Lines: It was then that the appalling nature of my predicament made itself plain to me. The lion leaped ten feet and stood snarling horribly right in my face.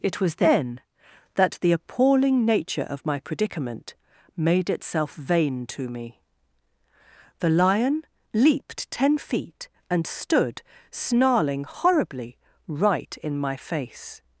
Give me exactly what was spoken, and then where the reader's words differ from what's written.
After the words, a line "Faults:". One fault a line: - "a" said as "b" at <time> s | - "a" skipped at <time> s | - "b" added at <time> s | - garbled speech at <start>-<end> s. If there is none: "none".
It was then that the appalling nature of my predicament made itself vain to me. The lion leaped ten feet and stood snarling horribly right in my face.
Faults:
- "plain" said as "vain" at 5.1 s